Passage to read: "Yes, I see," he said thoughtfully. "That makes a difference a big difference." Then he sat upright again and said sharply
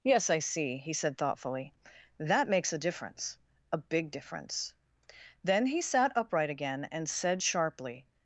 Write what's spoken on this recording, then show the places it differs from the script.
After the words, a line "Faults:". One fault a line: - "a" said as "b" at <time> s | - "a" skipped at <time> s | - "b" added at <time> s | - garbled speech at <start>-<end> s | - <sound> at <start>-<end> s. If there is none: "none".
"Yes, I see," he said thoughtfully. "That makes a difference a big difference." Then he sat upright again and said sharply
Faults:
none